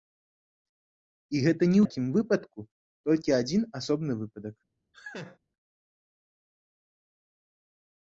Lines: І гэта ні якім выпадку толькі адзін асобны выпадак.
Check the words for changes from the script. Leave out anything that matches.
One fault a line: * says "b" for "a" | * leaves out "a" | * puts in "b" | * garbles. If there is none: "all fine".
all fine